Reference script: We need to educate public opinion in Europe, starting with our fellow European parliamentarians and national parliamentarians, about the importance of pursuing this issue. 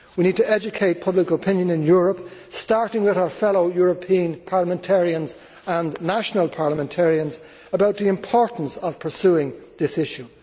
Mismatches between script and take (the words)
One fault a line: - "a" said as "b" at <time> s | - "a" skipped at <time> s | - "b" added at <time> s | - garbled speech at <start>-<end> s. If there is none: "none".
none